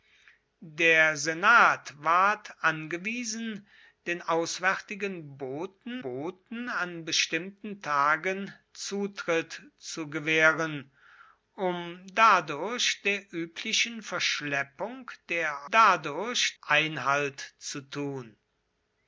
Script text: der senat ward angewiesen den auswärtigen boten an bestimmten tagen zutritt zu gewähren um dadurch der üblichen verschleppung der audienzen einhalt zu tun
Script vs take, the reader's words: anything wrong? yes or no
yes